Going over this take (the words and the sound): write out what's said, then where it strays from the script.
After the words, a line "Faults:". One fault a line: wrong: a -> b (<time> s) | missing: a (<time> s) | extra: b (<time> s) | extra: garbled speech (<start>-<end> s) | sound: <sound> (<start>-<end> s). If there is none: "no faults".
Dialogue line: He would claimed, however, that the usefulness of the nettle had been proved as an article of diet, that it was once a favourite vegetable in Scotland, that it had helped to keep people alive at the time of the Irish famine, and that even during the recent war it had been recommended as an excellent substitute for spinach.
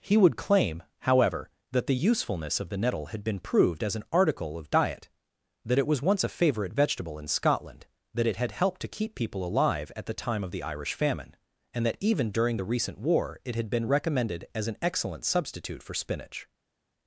He would claim, however, that the usefulness of the nettle had been proved as an article of diet, that it was once a favourite vegetable in Scotland, that it had helped to keep people alive at the time of the Irish famine, and that even during the recent war it had been recommended as an excellent substitute for spinach.
Faults:
wrong: claimed -> claim (0.3 s)